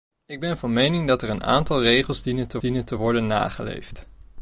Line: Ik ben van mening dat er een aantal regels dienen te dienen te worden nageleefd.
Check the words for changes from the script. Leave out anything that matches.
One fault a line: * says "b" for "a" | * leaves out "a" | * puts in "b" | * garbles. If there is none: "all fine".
all fine